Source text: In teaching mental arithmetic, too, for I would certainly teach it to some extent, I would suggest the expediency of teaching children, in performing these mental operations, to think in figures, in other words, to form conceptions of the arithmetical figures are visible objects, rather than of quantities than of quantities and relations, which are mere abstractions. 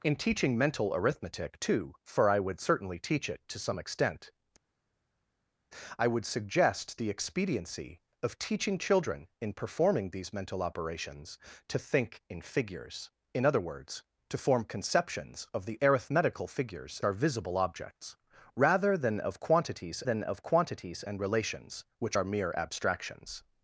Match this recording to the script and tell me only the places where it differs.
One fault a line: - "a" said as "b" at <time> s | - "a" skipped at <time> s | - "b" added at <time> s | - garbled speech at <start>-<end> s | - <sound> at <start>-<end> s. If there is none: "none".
none